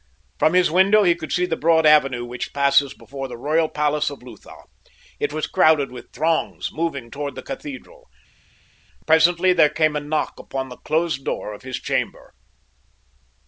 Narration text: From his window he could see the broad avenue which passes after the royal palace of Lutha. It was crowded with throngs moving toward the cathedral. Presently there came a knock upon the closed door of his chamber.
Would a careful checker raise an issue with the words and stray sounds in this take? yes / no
yes